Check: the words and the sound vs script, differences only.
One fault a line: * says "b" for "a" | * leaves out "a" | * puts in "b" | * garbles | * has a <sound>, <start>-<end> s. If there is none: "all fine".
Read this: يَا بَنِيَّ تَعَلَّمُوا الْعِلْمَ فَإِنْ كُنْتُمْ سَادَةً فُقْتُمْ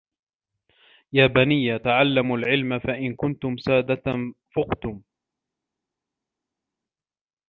all fine